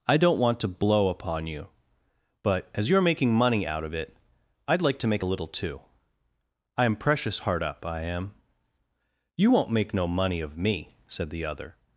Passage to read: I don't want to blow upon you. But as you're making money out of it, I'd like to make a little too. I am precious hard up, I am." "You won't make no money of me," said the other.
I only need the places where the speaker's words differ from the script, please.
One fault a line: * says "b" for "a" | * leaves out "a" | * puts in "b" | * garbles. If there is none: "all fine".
all fine